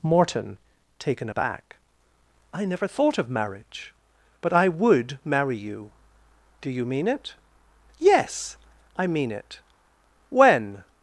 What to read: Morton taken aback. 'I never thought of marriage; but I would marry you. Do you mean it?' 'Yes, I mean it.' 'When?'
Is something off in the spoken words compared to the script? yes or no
no